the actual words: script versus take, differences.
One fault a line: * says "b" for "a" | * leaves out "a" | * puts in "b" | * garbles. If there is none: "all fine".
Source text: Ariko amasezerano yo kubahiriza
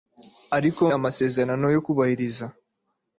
all fine